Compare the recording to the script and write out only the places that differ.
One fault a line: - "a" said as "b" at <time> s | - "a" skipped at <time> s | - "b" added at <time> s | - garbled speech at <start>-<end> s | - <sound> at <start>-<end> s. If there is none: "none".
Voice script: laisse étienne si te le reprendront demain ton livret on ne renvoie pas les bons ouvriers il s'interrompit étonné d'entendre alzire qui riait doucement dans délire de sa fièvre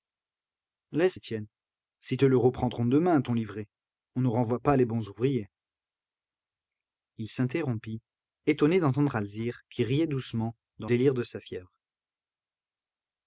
none